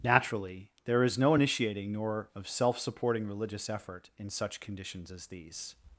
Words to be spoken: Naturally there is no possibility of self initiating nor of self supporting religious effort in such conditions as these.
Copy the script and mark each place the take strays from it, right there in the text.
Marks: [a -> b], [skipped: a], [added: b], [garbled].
Naturally there is no [skipped: possibility of self] initiating nor of self supporting religious effort in such conditions as these.